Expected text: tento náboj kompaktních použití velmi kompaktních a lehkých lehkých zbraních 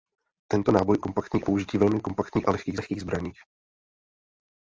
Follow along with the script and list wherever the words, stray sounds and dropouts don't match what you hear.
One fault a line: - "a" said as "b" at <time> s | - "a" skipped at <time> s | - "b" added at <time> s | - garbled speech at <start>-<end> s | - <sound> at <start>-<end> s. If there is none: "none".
none